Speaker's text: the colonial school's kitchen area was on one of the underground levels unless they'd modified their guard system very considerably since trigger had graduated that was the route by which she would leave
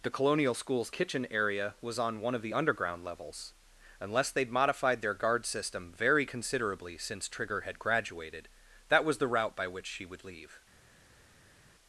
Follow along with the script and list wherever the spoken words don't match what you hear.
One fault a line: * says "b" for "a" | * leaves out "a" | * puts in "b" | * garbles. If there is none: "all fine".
all fine